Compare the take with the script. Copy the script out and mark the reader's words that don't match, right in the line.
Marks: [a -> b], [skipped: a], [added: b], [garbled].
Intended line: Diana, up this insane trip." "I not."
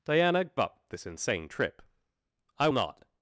Diana, up this insane trip." "I not."